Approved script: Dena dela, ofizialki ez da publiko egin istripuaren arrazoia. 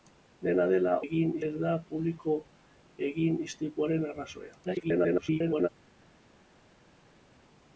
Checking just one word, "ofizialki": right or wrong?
wrong